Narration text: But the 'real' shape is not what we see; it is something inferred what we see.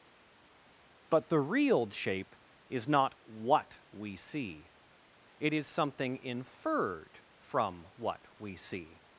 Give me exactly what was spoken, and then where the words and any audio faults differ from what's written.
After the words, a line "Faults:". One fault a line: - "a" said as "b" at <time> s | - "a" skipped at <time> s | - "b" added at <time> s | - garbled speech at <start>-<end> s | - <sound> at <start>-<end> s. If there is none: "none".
But the 'real' shape is not what we see; it is something inferred from what we see.
Faults:
- "from" added at 7.4 s